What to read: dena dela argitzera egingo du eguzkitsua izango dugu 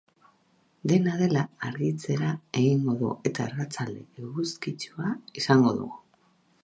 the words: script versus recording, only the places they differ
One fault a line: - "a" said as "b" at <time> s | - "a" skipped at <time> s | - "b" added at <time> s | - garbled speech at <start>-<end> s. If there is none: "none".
- "eta arratsalde" added at 3.3 s